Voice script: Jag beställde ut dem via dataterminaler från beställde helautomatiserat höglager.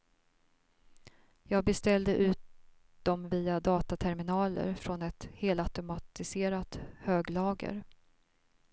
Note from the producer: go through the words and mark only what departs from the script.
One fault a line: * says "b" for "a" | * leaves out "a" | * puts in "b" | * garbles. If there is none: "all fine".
* says "ett" for "beställde"